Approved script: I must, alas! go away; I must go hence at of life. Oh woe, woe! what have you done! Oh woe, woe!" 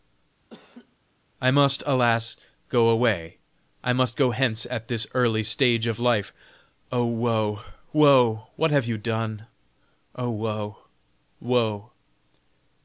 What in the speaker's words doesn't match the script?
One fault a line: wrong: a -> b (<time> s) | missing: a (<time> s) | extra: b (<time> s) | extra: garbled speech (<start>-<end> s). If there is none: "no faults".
extra: this early stage (4.9 s)